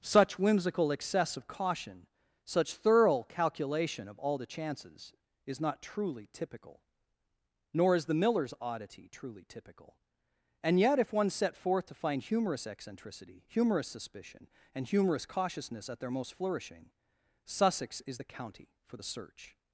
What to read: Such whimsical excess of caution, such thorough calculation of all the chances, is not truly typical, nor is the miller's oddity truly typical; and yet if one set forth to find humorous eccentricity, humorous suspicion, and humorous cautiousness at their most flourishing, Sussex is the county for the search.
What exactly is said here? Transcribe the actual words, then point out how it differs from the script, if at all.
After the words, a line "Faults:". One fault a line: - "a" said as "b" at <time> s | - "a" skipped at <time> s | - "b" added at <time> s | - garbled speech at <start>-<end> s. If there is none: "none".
Such whimsical excess of caution, such thorough calculation of all the chances, is not truly typical, nor is the miller's oddity truly typical; and yet if one set forth to find humorous eccentricity, humorous suspicion, and humorous cautiousness at their most flourishing, Sussex is the county for the search.
Faults:
none